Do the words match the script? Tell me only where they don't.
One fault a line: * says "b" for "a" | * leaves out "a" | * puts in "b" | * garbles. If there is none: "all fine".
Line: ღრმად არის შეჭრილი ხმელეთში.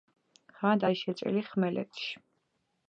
all fine